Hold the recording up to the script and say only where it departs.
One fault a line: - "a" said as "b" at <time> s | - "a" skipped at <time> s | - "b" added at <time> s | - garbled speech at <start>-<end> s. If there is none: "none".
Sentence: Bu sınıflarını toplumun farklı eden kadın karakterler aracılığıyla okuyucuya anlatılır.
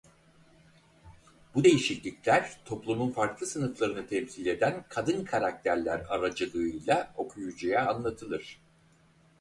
- "sınıflarını" said as "değişiklikler" at 1.6 s
- "sınıflarını temsil" added at 3.5 s